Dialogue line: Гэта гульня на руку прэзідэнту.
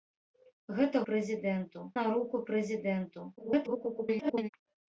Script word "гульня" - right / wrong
wrong